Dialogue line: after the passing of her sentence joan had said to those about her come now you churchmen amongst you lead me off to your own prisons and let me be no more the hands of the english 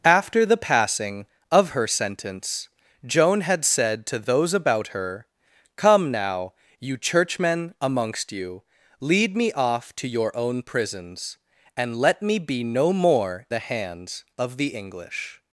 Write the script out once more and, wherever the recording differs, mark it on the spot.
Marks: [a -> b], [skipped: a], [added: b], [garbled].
after the passing of her sentence joan had said to those about her come now you churchmen amongst you lead me off to your own prisons and let me be no more the hands of the english